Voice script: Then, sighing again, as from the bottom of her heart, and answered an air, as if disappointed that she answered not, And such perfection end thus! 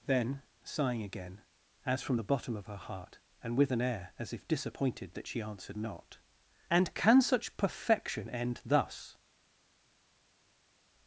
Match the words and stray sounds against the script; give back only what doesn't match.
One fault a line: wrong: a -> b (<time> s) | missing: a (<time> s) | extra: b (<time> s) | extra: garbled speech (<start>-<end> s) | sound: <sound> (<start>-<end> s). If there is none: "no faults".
wrong: answered -> with (3.6 s)
extra: can (6.9 s)